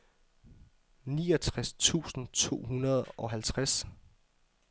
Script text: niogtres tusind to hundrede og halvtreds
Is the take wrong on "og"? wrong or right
right